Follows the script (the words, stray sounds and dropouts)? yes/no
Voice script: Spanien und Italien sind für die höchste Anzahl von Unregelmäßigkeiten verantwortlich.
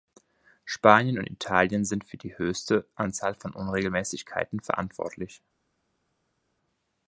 yes